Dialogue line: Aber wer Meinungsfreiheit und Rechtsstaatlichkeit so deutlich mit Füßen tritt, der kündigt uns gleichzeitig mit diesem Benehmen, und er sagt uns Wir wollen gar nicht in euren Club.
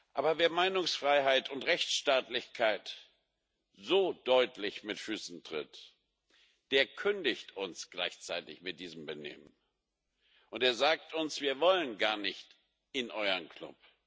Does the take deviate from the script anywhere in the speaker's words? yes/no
no